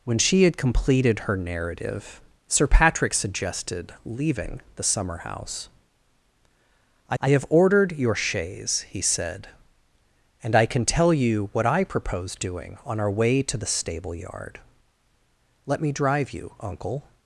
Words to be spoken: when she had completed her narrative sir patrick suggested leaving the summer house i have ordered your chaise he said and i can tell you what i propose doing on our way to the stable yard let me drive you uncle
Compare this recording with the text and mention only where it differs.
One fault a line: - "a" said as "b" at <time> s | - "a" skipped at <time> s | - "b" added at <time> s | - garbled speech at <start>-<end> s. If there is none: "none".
- "i" added at 7.2 s